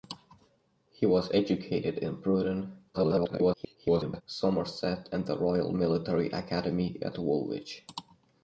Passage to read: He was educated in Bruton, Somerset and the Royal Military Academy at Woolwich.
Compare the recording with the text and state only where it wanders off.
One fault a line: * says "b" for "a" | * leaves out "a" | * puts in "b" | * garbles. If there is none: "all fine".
* garbles